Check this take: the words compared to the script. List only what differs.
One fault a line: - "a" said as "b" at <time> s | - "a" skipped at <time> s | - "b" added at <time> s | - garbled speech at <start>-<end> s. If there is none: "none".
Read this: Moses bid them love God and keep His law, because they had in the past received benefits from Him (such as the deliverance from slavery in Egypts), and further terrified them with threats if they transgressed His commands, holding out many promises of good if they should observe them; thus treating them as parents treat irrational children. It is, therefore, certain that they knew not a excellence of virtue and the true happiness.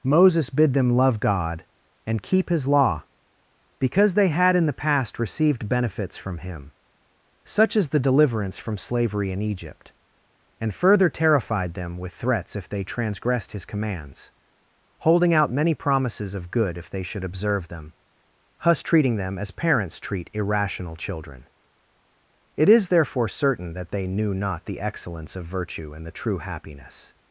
- "Egypts" said as "Egypt" at 9.4 s
- "a" said as "the" at 24.6 s